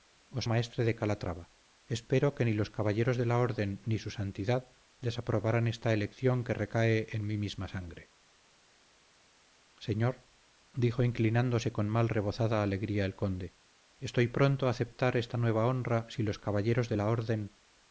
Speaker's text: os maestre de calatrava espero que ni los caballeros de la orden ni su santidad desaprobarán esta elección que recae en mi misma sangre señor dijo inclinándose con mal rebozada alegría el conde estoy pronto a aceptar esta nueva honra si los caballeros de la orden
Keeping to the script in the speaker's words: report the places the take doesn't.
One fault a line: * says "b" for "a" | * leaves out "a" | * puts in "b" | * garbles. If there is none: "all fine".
all fine